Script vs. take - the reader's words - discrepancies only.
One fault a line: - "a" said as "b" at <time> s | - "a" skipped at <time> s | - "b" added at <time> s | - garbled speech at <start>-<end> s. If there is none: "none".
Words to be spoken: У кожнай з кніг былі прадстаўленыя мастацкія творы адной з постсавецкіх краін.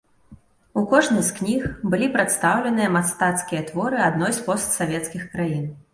none